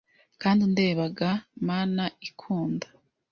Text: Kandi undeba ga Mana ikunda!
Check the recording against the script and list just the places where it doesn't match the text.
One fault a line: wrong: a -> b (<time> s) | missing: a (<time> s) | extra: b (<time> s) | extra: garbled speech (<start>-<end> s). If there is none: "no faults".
no faults